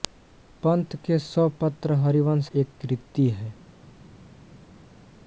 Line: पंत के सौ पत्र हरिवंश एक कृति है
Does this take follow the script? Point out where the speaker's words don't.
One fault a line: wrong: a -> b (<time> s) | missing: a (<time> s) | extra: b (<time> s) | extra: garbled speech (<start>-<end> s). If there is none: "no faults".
no faults